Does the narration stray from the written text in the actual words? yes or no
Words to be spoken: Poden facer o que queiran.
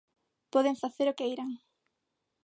yes